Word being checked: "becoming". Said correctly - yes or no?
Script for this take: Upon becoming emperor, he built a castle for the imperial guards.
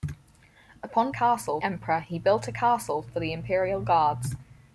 no